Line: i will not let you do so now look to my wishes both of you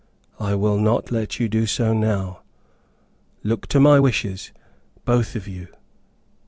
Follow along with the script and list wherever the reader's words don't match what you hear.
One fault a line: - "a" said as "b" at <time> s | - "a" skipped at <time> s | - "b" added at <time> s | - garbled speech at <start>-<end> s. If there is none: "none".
none